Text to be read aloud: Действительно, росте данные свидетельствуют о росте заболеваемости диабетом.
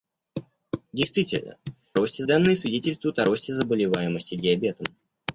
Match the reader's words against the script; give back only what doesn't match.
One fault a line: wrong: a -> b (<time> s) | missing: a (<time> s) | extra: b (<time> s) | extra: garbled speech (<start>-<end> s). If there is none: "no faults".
no faults